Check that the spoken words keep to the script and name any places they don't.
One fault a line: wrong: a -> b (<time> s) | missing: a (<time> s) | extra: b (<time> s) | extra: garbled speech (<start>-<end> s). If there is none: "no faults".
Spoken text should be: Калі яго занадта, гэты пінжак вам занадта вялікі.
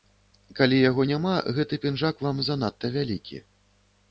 wrong: занадта -> няма (1.1 s)